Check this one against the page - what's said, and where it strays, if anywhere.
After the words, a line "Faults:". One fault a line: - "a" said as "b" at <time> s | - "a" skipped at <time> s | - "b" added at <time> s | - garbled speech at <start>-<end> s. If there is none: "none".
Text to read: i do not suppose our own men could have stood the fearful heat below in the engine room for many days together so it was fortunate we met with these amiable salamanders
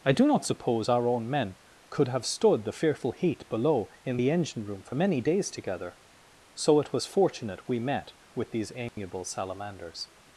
i do not suppose our own men could have stood the fearful heat below in the engine room for many days together so it was fortunate we met with these amiable salamanders
Faults:
none